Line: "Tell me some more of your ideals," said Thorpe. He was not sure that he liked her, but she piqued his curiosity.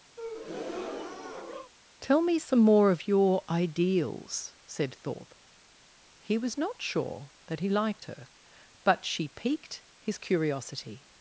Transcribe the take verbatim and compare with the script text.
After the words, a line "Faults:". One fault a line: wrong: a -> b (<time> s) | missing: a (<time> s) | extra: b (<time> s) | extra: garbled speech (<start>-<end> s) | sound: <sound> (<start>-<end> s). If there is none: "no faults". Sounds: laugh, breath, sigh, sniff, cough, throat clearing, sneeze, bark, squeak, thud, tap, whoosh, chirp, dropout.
"Tell me some more of your ideals," said Thorpe. He was not sure that he liked her, but she piqued his curiosity.
Faults:
sound: breath (0.2-1.7 s)